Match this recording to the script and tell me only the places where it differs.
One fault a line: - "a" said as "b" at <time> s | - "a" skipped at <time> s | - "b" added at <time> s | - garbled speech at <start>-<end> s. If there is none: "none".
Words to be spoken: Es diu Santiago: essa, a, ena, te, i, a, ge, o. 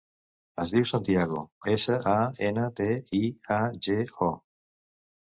none